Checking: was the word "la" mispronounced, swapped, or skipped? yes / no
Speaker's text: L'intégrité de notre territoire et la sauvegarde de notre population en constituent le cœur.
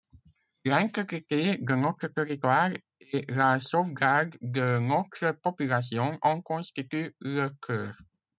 no